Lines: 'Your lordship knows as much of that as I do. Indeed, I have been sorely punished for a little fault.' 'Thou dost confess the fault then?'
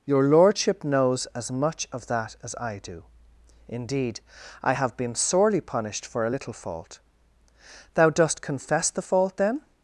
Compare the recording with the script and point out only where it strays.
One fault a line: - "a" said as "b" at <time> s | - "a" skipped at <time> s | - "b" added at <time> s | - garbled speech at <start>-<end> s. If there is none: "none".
none